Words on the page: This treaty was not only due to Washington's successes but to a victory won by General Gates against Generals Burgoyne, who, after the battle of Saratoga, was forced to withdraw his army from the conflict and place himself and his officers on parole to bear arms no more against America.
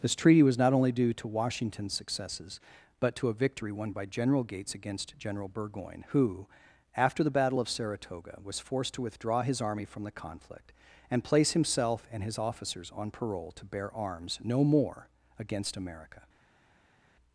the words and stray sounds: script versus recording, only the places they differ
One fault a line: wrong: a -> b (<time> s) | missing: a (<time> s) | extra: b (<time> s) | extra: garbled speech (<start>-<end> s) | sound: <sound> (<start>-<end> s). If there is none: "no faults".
wrong: Generals -> General (5.2 s)